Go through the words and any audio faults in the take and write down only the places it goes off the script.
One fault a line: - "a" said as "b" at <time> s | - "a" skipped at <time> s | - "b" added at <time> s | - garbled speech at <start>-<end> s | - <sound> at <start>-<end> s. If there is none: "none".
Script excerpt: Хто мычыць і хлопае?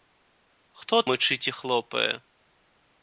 none